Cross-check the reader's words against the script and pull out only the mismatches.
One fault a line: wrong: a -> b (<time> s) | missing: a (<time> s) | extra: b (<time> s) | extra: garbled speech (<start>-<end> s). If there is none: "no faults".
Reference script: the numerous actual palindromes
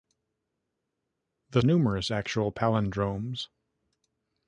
no faults